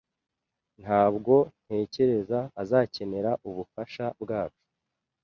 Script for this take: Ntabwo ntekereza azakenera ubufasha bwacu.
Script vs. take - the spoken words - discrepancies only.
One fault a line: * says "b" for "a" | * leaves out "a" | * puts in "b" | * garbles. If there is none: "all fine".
all fine